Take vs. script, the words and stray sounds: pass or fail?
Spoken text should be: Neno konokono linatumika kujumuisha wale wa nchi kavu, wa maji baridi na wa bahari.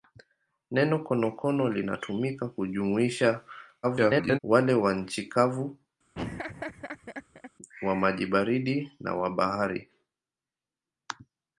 fail